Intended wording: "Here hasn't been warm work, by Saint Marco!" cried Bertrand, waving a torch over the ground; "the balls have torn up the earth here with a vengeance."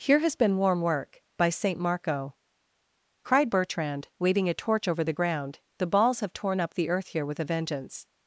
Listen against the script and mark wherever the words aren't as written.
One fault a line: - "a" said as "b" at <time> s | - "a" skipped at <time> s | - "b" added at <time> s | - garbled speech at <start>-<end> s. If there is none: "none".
- "hasn't" said as "has" at 0.2 s